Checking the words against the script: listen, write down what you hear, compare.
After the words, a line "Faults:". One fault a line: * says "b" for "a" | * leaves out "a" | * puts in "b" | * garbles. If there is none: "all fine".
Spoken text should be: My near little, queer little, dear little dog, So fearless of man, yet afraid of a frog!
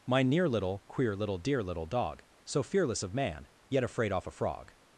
My near little, queer little, dear little dog, So fearless of man, yet afraid off a frog!
Faults:
* says "off" for "of"